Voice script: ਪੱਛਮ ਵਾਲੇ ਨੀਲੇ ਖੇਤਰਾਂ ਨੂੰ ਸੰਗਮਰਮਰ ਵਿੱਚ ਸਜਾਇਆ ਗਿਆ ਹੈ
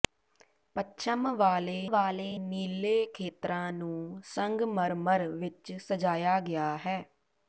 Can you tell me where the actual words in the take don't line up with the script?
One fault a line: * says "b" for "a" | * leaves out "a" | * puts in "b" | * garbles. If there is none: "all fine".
* puts in "ਵਾਲੇ"